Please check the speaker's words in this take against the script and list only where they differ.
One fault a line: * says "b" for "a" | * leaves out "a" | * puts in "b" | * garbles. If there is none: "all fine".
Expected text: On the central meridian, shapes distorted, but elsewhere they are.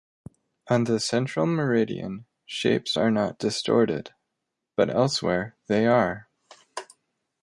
* puts in "are not"